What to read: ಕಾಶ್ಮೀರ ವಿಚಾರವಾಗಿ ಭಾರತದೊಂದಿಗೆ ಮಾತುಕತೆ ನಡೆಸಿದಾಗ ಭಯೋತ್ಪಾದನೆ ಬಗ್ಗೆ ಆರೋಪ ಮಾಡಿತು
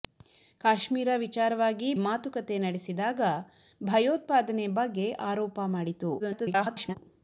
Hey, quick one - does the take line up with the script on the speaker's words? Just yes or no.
no